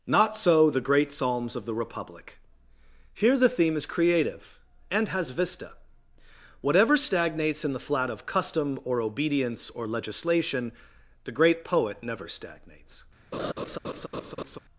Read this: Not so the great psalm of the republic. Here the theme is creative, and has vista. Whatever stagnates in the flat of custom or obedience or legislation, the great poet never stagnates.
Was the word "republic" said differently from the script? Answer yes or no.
no